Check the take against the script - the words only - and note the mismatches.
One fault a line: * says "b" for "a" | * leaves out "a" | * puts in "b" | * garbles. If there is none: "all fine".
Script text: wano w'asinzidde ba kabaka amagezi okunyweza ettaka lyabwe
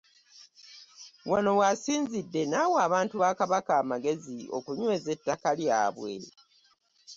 * puts in "n'awa abantu"